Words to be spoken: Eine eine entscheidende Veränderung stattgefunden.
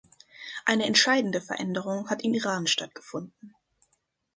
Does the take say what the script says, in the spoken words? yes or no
no